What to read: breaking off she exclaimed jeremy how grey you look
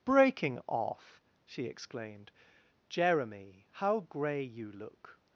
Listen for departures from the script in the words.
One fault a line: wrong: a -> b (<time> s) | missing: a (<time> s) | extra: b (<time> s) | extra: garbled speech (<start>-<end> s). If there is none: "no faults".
no faults